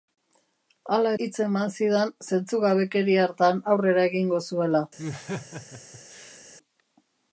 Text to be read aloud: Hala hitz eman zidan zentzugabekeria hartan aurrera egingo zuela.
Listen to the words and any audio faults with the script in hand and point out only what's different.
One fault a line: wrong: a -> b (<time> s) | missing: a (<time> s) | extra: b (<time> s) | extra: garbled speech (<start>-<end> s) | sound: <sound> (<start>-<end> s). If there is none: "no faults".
sound: laugh (5.0-6.4 s)